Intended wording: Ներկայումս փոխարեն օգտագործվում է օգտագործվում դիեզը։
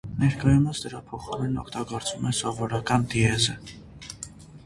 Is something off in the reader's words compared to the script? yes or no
yes